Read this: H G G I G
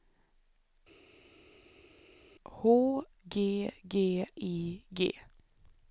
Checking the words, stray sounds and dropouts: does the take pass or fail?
pass